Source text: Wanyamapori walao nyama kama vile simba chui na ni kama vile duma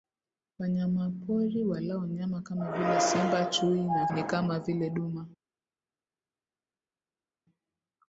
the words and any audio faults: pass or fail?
pass